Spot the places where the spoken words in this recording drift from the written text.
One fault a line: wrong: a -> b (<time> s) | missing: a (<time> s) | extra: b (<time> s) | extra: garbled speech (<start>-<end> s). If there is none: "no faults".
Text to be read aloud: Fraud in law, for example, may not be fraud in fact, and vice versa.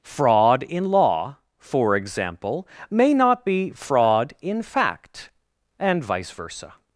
no faults